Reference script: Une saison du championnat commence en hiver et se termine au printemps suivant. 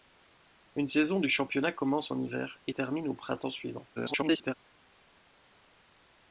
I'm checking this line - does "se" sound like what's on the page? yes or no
no